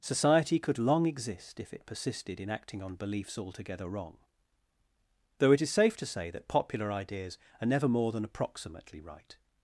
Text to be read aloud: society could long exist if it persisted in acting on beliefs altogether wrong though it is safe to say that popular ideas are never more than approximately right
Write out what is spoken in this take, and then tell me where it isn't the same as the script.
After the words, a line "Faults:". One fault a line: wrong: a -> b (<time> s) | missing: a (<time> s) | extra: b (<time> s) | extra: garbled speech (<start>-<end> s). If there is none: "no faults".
society could long exist if it persisted in acting on beliefs altogether wrong though it is safe to say that popular ideas are never more than approximately right
Faults:
no faults